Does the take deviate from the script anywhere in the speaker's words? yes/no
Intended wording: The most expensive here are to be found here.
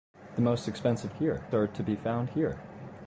no